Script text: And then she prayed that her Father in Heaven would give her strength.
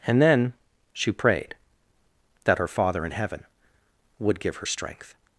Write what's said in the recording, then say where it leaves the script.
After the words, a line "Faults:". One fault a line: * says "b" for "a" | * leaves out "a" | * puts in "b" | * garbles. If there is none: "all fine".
And then she prayed that her Father in Heaven would give her strength.
Faults:
all fine